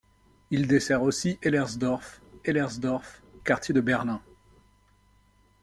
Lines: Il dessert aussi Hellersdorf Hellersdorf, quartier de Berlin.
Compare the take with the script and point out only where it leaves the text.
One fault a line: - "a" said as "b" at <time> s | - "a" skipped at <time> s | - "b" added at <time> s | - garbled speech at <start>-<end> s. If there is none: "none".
none